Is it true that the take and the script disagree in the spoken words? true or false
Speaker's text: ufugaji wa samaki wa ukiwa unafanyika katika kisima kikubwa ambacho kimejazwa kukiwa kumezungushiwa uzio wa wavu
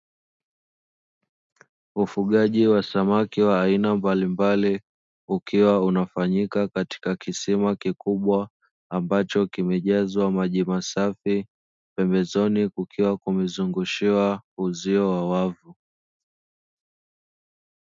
true